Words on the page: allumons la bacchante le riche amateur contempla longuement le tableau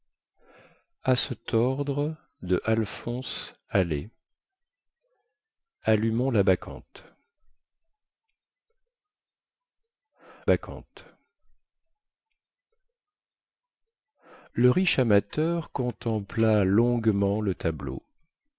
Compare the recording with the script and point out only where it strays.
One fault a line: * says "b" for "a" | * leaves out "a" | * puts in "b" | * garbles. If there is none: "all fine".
* puts in "bacchante"